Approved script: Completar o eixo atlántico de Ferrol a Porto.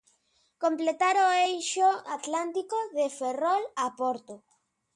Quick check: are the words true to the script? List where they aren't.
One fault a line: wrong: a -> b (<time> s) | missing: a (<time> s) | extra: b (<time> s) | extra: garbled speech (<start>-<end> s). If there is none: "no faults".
no faults